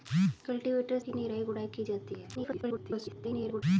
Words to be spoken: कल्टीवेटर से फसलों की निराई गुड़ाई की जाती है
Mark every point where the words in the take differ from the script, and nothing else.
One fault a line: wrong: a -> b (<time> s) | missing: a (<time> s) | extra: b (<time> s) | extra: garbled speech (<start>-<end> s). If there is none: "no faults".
missing: से फसलों (1.0 s)
extra: garbled speech (2.3-3.6 s)